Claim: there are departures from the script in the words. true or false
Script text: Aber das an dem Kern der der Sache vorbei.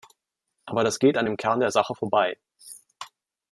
true